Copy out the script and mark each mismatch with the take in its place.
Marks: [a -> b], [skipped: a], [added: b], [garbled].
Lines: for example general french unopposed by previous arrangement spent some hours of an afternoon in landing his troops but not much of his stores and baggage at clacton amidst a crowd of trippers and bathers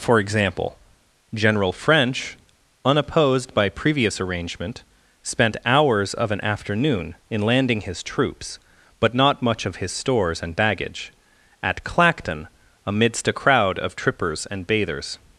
for example general french unopposed by previous arrangement spent [skipped: some] hours of an afternoon in landing his troops but not much of his stores and baggage at clacton amidst a crowd of trippers and bathers